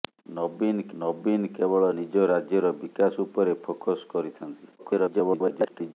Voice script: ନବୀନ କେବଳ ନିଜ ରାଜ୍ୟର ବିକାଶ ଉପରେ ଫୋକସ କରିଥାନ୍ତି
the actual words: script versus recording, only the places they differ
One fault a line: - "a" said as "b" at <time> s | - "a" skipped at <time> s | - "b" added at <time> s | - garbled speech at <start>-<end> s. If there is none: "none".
- "ନବୀନ" added at 1.0 s
- garbled speech at 4.8-5.9 s